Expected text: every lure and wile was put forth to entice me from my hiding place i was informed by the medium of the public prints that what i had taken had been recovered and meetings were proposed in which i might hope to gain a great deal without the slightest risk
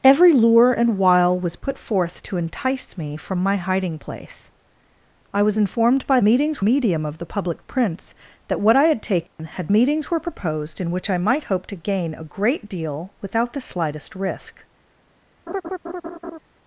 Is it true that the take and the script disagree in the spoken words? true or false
true